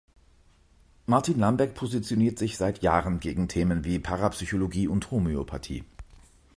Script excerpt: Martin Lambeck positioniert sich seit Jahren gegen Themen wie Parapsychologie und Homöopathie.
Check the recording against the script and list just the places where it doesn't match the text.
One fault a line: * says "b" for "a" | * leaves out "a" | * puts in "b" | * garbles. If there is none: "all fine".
all fine